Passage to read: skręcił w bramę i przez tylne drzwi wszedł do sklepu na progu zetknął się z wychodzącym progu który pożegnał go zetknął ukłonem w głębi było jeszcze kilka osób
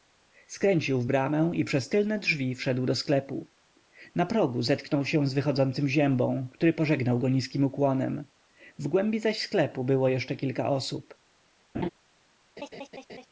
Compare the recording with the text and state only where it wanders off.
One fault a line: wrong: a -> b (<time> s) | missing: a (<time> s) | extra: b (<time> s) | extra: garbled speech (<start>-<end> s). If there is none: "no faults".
wrong: progu -> ziębą (5.9 s)
wrong: zetknął -> niskim (7.3 s)
extra: zaś sklepu (9.2 s)